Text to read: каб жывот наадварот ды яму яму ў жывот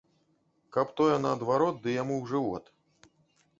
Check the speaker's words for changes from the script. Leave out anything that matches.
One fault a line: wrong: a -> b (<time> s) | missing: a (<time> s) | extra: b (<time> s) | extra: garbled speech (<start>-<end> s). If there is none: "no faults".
wrong: жывот -> тое (1.0 s)
missing: яму (2.1 s)